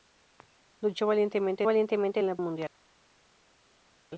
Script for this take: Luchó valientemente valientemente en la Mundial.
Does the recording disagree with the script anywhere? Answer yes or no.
no